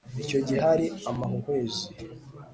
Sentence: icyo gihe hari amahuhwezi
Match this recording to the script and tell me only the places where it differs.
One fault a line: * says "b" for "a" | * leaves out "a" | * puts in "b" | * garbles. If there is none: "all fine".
all fine